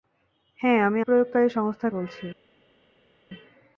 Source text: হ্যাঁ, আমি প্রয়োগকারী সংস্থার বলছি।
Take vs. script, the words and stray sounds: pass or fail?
pass